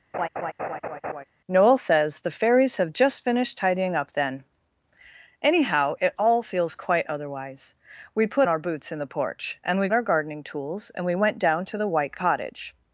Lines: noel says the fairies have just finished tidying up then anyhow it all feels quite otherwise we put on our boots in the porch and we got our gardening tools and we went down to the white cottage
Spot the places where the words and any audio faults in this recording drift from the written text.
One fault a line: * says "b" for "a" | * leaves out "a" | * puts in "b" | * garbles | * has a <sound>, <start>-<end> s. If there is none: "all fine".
* has a laugh, 0.1-1.2 s
* leaves out "on"
* leaves out "got"